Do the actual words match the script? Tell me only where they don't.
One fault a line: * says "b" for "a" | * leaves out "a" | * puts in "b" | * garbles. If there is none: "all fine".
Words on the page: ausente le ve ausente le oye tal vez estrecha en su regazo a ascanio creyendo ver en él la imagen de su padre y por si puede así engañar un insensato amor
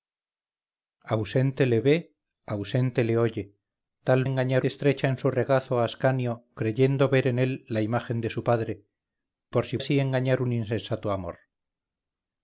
* says "engañar" for "vez"
* leaves out "y"
* leaves out "puede"